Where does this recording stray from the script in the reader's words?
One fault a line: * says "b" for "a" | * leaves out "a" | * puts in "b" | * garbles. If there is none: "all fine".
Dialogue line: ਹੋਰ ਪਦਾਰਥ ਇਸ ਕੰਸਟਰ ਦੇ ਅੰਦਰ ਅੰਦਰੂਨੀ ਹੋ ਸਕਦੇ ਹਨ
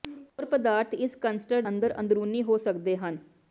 * leaves out "ਦੇ"